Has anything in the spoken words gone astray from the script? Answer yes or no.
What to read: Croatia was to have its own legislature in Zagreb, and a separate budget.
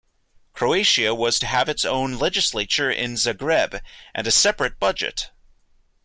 no